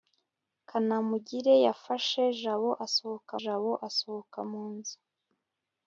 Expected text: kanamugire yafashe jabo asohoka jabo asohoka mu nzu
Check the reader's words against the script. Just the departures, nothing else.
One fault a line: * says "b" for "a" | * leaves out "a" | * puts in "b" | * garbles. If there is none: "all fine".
all fine